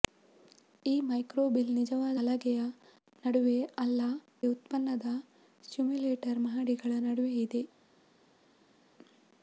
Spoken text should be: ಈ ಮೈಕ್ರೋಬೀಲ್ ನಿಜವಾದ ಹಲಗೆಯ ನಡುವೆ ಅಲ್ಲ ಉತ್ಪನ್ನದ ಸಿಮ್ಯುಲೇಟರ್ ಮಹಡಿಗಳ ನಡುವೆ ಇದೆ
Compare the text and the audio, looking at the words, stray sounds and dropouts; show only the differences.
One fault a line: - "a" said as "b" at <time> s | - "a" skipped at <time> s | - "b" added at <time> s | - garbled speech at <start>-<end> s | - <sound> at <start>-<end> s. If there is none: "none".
none